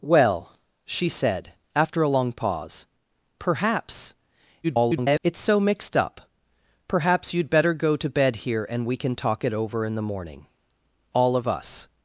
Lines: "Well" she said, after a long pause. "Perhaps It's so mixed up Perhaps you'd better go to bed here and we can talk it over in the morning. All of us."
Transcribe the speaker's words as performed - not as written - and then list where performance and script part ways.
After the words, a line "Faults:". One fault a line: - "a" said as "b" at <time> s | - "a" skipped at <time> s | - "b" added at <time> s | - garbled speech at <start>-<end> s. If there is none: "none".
"Well" she said, after a long pause. "Perhaps [garbled] It's so mixed up Perhaps you'd better go to bed here and we can talk it over in the morning. All of us."
Faults:
- garbled speech at 4.6-5.2 s